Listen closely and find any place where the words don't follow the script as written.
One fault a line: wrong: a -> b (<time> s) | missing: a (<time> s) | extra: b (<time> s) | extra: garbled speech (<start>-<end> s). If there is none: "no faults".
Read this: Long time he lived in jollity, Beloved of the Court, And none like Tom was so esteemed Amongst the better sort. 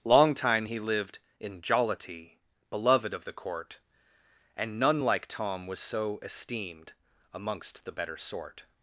no faults